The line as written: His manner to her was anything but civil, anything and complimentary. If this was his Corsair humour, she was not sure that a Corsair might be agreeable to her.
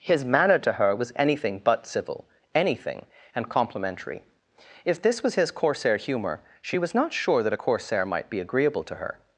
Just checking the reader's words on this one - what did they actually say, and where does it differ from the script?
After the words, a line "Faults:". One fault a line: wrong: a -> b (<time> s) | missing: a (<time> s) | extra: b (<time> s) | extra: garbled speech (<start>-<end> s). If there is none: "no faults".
His manner to her was anything but civil, anything and complimentary. If this was his Corsair humour, she was not sure that a Corsair might be agreeable to her.
Faults:
no faults